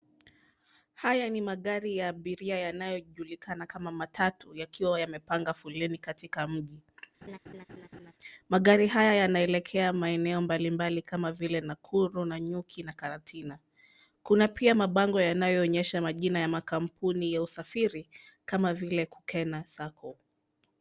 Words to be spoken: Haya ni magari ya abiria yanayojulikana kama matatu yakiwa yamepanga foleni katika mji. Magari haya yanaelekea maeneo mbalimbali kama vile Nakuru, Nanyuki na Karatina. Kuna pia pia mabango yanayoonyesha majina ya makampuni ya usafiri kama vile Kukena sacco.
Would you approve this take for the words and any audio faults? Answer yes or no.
no